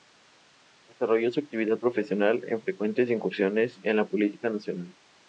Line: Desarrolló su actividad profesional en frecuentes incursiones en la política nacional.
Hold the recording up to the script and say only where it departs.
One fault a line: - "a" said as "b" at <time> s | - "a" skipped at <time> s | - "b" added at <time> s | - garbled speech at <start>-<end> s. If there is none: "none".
none